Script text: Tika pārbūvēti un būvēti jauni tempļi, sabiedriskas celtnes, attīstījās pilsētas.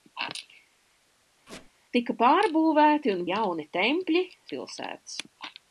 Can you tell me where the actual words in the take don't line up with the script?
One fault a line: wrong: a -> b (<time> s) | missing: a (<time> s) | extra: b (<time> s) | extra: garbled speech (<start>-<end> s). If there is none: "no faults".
missing: būvēti (3.2 s)
missing: sabiedriskas celtnes attīstījās (4.2 s)